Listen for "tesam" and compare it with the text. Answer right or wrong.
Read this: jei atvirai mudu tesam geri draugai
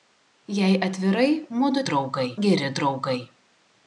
wrong